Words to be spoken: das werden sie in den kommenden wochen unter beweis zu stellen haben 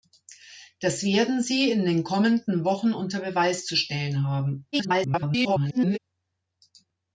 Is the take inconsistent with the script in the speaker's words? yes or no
yes